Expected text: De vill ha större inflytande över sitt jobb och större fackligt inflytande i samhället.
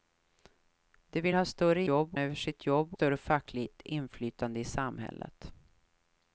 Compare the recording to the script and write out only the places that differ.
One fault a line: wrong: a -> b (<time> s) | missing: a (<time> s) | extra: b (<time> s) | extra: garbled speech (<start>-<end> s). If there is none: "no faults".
wrong: inflytande -> jobb (1.9 s)
missing: och (2.9 s)